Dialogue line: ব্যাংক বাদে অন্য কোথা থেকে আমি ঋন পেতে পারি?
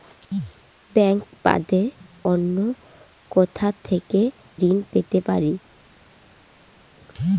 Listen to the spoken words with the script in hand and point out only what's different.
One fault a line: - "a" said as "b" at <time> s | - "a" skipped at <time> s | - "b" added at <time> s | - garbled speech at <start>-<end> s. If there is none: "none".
- "আমি" skipped at 4.2 s